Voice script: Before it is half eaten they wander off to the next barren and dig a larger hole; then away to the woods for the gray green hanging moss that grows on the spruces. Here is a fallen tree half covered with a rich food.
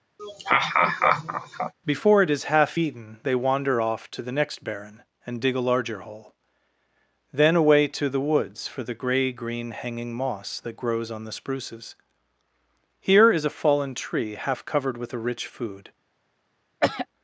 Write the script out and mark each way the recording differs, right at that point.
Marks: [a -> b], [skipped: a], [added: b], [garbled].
Before it is half eaten they wander off to the next barren and dig a larger hole; then away to the woods for the gray green hanging moss that grows on the spruces. Here is a fallen tree half covered with a rich food.